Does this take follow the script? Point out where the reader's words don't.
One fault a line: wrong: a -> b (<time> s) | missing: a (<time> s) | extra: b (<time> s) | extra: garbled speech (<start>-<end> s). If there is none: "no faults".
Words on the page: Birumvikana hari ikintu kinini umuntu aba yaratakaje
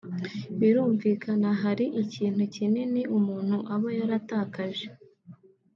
no faults